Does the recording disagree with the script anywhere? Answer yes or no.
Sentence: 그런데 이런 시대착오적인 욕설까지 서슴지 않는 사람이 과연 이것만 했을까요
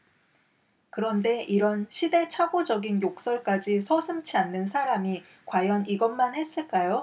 no